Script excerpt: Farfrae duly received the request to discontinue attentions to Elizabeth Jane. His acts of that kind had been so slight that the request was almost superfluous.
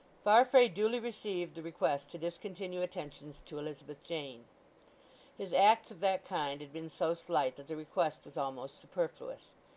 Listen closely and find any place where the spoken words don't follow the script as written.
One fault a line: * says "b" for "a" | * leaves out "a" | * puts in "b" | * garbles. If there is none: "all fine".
all fine